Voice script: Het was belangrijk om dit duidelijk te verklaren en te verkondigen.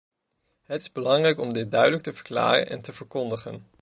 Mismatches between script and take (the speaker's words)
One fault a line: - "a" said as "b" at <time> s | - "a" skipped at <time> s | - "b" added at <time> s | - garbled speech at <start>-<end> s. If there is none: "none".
- "was" said as "is" at 0.8 s